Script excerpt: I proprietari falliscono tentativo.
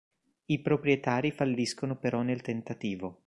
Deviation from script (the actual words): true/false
true